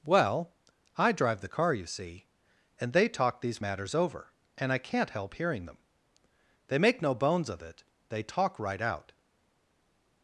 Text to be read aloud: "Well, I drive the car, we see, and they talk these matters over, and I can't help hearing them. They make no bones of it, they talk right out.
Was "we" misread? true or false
true